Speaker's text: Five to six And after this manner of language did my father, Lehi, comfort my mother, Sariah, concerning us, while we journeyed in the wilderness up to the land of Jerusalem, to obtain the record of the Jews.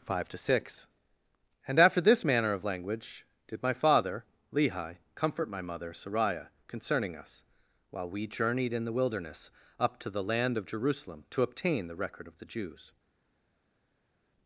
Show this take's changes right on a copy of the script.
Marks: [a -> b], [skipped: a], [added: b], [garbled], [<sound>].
Five to six And after this manner of language did my father, Lehi, comfort my mother, Sariah, concerning us, while we journeyed in the wilderness up to the land of Jerusalem, to obtain the record of the Jews.